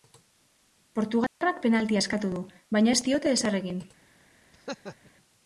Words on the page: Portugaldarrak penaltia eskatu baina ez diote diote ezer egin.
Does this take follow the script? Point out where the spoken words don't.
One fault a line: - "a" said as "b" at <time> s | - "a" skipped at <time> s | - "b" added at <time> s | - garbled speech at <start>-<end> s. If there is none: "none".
- "du" added at 2.3 s
- "diote" skipped at 3.4 s